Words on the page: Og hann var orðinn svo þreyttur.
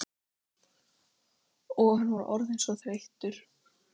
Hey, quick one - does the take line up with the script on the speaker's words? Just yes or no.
yes